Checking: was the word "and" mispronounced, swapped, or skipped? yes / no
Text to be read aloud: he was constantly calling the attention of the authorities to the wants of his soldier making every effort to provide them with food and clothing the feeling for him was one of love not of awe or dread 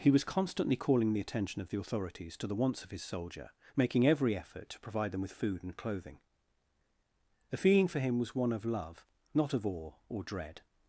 no